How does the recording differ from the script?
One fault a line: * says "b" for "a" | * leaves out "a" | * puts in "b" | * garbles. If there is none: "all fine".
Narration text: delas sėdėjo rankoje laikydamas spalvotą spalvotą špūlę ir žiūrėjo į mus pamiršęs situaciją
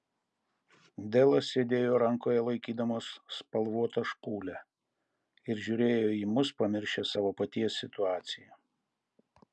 * leaves out "spalvotą"
* puts in "savo paties"